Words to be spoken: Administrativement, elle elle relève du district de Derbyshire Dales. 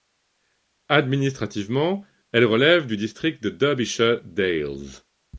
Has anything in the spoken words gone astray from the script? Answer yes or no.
yes